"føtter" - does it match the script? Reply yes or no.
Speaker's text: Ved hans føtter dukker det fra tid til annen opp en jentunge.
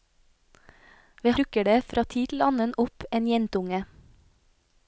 no